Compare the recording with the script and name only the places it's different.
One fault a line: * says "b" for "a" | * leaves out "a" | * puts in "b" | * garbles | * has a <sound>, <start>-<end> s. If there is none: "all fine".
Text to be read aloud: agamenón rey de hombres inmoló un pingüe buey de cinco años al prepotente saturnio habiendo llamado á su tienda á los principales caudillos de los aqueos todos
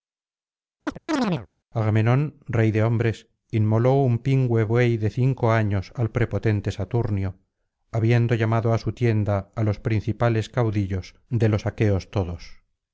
* has a chirp, 0.9-1.5 s